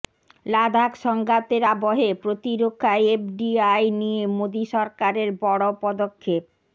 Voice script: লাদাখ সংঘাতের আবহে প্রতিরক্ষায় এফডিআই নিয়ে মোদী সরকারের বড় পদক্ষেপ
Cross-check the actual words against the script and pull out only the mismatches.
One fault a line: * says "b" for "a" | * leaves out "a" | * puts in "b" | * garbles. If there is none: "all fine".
all fine